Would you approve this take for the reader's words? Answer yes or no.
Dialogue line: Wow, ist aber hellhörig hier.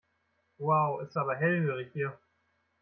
yes